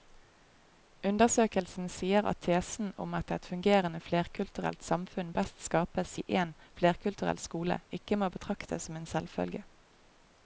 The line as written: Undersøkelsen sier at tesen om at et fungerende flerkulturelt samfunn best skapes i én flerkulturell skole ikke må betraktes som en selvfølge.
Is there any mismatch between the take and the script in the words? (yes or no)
no